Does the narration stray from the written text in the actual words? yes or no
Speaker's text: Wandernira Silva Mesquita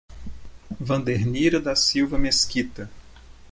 yes